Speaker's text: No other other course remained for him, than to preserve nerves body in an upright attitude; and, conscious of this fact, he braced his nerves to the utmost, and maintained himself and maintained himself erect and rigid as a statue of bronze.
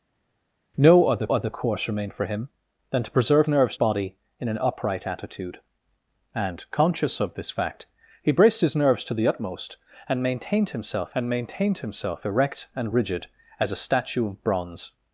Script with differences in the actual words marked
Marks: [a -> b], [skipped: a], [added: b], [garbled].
No other other course remained for him, than to preserve nerves body in an upright attitude; and, conscious of this fact, he braced his nerves to the utmost, and maintained himself and maintained himself erect and rigid as a statue of bronze.